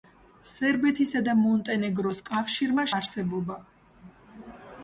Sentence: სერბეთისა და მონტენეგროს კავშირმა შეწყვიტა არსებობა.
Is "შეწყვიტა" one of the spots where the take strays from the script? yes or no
yes